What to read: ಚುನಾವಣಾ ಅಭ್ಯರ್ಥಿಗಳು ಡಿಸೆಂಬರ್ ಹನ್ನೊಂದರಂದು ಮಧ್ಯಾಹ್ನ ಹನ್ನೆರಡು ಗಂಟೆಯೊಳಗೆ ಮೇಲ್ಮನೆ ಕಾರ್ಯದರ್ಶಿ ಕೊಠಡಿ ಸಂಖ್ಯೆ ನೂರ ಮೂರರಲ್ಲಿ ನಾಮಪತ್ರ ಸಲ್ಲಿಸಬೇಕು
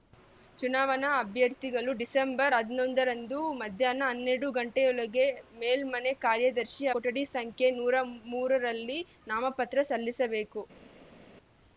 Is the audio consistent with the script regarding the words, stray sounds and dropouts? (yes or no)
yes